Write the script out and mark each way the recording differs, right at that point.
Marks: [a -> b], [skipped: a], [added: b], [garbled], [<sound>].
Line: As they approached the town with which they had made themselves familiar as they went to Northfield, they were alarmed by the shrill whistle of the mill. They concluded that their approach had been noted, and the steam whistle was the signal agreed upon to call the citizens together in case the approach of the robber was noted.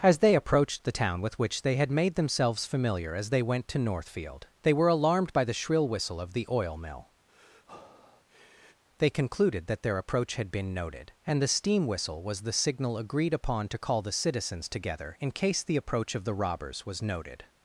As they approached the town with which they had made themselves familiar as they went to Northfield, they were alarmed by the shrill whistle of the [added: oil] mill. [breath] They concluded that their approach had been noted, and the steam whistle was the signal agreed upon to call the citizens together in case the approach of the [robber -> robbers] was noted.